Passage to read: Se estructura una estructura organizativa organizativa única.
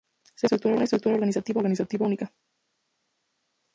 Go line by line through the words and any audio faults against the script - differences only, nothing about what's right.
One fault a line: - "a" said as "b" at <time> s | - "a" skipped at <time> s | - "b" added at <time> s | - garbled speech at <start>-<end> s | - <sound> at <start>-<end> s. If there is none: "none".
none